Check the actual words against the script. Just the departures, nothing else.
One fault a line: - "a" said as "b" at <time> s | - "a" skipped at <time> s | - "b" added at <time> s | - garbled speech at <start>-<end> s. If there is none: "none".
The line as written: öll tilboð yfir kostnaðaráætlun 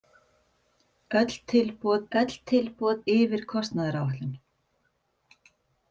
- "öll tilboð" added at 2.2 s